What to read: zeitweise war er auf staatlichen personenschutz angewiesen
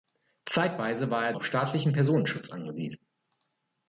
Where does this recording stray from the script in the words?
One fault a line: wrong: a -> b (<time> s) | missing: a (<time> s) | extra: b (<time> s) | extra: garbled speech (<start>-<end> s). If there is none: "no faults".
no faults